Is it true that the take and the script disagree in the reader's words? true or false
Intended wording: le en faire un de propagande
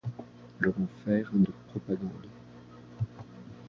false